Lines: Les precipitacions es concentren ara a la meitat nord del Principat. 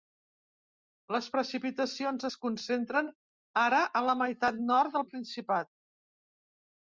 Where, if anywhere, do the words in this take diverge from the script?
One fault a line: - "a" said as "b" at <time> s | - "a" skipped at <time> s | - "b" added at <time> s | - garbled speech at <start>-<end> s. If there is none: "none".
none